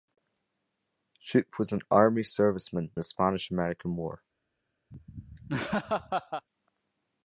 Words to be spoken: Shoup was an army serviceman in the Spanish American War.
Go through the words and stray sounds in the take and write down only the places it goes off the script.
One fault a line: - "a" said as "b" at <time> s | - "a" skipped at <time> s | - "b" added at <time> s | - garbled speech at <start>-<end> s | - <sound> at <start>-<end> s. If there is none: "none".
- "in" skipped at 2.9 s
- laugh at 4.9-6.5 s